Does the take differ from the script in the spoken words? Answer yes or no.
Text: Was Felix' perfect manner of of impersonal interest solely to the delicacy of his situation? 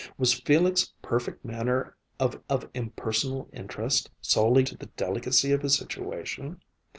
no